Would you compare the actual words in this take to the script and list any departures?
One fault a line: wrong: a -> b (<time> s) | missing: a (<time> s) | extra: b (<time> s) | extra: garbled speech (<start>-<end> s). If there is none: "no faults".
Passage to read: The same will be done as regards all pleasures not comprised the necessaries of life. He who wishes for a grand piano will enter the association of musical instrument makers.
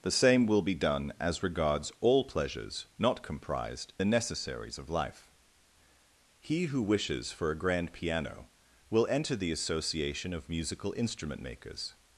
no faults